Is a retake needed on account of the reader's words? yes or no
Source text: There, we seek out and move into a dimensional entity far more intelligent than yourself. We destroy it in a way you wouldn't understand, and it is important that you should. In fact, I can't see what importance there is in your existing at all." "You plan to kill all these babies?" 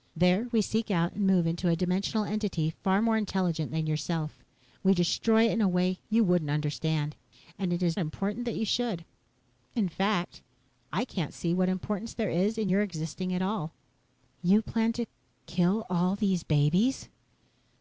no